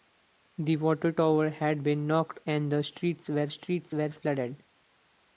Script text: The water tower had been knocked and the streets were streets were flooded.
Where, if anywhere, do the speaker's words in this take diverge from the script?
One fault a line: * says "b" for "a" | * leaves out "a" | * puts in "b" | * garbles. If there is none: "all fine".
all fine